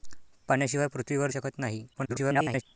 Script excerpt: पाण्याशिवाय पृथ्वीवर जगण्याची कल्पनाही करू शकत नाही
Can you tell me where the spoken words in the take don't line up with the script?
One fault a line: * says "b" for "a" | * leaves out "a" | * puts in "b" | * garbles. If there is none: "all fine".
* leaves out "जगण्याची कल्पनाही करू"
* garbles